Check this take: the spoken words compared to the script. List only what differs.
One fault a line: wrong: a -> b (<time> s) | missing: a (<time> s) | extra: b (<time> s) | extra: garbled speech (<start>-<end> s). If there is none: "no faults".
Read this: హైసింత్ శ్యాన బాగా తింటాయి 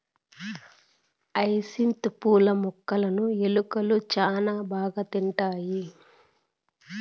extra: పూల మొక్కలును ఎలుకలు (2.2 s)